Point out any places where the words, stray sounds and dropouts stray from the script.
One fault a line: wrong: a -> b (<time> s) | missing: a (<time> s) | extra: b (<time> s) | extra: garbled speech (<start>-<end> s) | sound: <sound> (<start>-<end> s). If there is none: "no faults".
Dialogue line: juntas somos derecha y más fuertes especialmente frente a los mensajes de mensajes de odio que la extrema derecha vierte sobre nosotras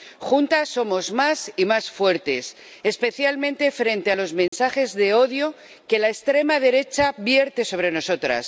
wrong: derecha -> más (1.1 s)
sound: dropout (4.5-4.5 s)
missing: mensajes de (5.1 s)